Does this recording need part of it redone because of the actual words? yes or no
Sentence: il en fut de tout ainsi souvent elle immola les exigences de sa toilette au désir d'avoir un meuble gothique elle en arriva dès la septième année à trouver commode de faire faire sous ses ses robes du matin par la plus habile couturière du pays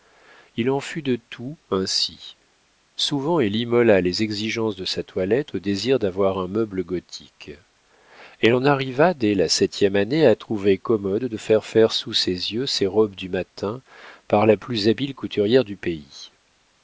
yes